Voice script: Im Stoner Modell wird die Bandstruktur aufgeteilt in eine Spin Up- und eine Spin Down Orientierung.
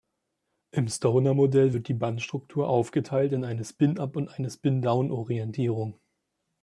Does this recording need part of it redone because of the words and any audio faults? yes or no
no